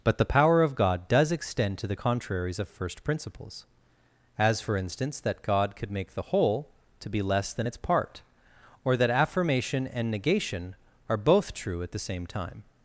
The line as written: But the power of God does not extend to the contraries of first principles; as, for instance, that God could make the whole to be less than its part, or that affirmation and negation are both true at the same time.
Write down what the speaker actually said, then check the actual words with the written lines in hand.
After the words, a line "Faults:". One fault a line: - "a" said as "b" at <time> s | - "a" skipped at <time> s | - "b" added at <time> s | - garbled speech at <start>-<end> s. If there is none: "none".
But the power of God does extend to the contraries of first principles; as, for instance, that God could make the whole to be less than its part, or that affirmation and negation are both true at the same time.
Faults:
- "not" skipped at 1.3 s